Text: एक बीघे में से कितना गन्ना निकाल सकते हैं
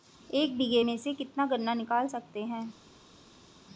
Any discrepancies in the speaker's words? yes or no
no